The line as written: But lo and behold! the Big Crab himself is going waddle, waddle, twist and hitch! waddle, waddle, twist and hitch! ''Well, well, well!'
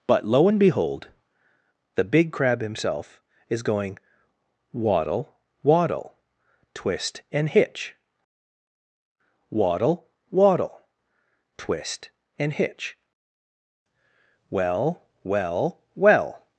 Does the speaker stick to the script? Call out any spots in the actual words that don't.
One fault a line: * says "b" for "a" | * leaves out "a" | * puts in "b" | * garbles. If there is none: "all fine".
all fine